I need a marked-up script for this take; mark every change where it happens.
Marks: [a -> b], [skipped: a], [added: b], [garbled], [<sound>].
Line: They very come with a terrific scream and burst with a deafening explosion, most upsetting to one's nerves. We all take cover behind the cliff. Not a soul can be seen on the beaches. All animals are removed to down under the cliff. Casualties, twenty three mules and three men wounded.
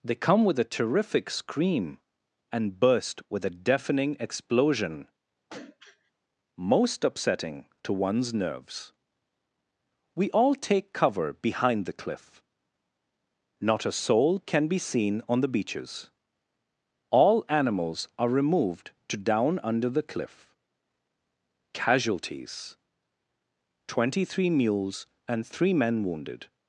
They [skipped: very] come with a terrific scream and burst with a deafening explosion, [throat clearing] most upsetting to one's nerves. We all take cover behind the cliff. Not a soul can be seen on the beaches. All animals are removed to down under the cliff. Casualties, twenty three mules and three men wounded.